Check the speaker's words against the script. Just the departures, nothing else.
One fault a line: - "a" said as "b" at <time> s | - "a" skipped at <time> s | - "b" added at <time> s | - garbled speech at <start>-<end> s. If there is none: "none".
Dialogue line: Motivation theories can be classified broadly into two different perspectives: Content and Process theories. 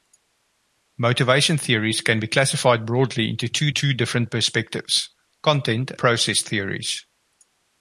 - "two" added at 3.7 s
- "and" skipped at 5.9 s